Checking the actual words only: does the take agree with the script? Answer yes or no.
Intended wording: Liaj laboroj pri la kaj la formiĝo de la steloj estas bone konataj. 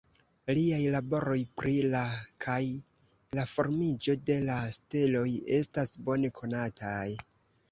yes